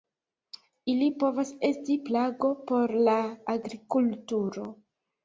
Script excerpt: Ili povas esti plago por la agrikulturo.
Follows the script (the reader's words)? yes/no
yes